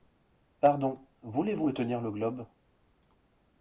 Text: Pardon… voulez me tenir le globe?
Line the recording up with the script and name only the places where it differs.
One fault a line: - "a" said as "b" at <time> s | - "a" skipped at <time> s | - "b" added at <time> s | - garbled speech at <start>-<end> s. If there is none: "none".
- "vous" added at 1.5 s